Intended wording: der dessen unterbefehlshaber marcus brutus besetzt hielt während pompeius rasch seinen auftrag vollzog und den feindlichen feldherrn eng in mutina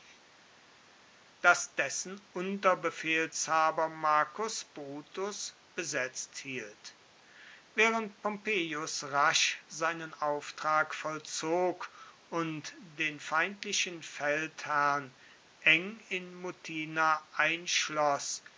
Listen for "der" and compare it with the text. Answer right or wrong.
wrong